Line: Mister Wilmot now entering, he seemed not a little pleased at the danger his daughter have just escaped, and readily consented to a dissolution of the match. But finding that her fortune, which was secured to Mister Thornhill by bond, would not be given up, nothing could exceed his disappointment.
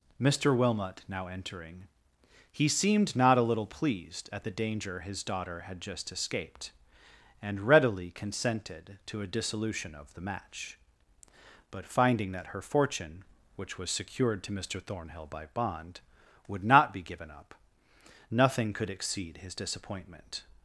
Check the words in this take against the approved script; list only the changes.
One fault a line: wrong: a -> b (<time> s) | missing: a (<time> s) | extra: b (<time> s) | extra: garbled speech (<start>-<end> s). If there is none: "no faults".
wrong: have -> had (5.6 s)